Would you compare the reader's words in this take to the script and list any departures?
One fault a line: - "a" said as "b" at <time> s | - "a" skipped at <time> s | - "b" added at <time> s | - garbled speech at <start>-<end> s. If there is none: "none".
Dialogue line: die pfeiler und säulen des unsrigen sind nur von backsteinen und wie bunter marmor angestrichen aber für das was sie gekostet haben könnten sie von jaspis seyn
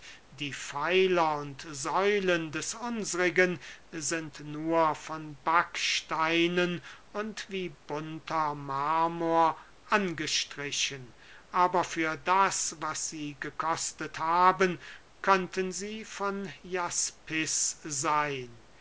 none